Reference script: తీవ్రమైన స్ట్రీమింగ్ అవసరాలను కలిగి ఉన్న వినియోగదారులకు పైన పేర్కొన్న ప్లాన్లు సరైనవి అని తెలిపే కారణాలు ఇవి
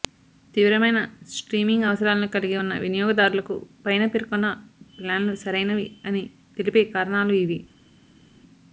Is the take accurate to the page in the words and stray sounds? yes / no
yes